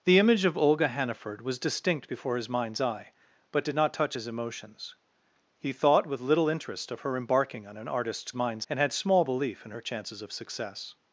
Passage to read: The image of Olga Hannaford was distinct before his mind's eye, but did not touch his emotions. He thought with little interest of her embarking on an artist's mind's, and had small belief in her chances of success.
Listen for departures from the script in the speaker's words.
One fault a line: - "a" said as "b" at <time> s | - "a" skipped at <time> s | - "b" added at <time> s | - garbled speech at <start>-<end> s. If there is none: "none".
none